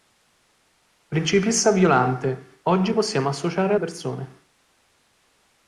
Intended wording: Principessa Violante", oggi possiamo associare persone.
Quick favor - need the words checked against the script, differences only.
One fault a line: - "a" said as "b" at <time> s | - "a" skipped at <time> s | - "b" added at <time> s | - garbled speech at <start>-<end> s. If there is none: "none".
none